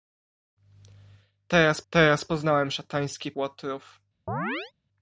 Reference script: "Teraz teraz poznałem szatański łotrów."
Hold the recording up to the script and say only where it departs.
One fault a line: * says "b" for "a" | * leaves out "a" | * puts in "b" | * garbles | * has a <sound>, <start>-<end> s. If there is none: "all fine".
* has a chirp, 4.3-4.7 s